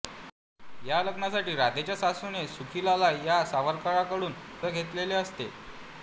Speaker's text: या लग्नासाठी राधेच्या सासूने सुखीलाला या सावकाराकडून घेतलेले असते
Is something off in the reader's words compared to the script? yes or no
no